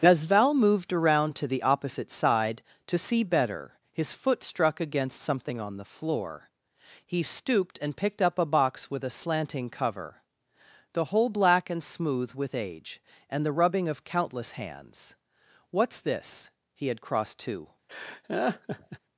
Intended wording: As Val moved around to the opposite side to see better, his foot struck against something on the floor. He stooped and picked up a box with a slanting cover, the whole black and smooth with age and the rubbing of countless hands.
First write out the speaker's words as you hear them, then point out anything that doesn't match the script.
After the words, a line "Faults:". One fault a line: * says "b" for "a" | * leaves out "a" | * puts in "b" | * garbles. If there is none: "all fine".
As Val moved around to the opposite side to see better, his foot struck against something on the floor. He stooped and picked up a box with a slanting cover, the whole black and smooth with age and the rubbing of countless hands. "What's this?" He had crossed to
Faults:
* puts in "What's this He had crossed to"